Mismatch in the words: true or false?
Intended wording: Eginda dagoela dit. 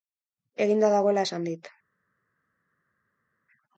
true